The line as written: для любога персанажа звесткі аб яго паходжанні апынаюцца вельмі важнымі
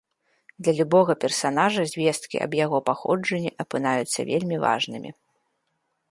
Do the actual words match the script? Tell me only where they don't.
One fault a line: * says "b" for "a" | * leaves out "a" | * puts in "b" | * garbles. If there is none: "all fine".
all fine